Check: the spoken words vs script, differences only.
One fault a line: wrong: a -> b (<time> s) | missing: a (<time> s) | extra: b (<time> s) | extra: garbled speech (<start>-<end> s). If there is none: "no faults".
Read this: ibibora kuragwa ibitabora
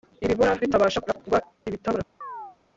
extra: bitabasha (0.6 s)